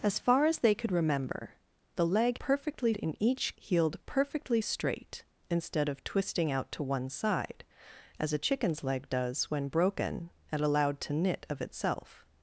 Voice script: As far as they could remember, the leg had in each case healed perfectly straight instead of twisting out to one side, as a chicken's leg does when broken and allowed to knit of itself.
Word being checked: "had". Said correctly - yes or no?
no